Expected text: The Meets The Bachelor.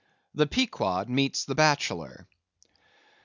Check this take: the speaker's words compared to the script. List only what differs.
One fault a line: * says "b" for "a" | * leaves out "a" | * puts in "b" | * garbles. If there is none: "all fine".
* puts in "Pequod"